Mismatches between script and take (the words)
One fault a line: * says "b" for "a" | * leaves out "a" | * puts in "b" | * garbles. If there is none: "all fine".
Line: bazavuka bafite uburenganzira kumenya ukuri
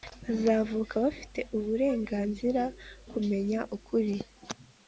all fine